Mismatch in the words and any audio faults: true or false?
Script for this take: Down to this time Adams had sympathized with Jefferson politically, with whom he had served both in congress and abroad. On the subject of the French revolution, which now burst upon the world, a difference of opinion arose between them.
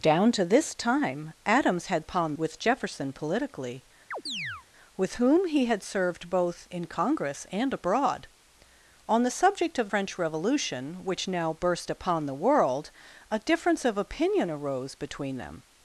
true